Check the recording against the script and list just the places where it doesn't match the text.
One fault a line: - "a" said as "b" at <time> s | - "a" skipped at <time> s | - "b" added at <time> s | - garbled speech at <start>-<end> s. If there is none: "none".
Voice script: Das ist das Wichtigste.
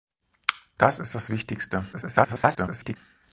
- garbled speech at 1.9-3.0 s